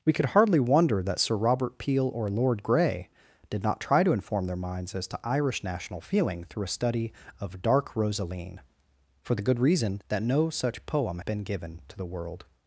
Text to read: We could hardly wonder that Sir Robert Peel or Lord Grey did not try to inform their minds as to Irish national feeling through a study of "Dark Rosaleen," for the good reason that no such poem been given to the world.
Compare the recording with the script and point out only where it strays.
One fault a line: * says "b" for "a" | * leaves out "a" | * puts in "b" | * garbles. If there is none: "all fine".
all fine